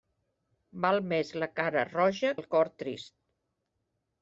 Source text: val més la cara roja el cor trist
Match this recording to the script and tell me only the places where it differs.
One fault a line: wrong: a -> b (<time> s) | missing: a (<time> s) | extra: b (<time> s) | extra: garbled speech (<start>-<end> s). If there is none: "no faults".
no faults